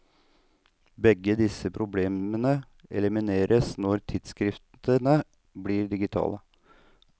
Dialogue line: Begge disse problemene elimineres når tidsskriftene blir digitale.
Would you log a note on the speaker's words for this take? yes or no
no